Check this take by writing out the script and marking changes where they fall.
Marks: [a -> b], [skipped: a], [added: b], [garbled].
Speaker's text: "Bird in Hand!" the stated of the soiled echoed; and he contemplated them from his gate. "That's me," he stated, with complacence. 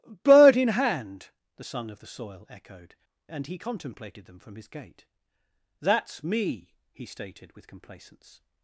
"Bird in Hand!" the [stated -> son] of the [soiled -> soil] echoed; and he contemplated them from his gate. "That's me," he stated, with complacence.